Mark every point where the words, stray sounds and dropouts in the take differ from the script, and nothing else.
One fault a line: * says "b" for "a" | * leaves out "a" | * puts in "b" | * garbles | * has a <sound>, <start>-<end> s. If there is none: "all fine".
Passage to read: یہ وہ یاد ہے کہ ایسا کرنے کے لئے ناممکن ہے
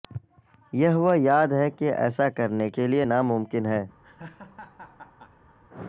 * has a laugh, 4.0-5.6 s